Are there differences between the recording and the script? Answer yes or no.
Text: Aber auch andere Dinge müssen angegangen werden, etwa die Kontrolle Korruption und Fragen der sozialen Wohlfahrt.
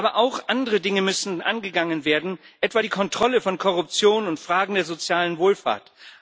yes